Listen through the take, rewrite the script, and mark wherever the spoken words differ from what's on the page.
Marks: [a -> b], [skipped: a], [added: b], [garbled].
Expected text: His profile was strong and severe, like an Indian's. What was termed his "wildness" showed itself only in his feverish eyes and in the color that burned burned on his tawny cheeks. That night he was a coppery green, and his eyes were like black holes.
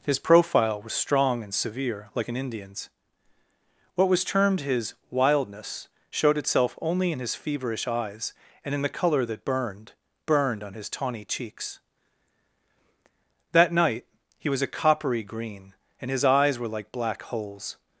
His profile was strong and severe, like an Indian's. What was termed his "wildness" showed itself only in his feverish eyes and in the color that burned burned on his tawny cheeks. That night he was a coppery green, and his eyes were like black holes.